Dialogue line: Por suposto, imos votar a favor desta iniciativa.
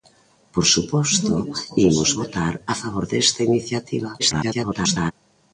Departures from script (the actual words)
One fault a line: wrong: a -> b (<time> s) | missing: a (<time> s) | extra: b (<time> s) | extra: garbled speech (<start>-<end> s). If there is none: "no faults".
extra: garbled speech (4.2-5.1 s)